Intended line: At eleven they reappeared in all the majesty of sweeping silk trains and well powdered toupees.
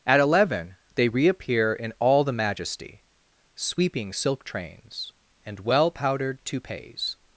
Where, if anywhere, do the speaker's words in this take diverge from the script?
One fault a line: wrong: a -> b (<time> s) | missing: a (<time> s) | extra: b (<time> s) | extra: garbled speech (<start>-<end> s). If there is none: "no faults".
wrong: reappeared -> reappear (1.1 s)
missing: of (3.0 s)